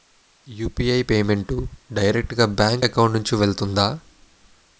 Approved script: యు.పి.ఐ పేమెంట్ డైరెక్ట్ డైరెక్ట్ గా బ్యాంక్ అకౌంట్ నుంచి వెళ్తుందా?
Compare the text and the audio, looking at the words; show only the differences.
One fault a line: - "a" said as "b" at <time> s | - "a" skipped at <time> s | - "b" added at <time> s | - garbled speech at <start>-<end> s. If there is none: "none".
- "డైరెక్ట్" skipped at 2.3 s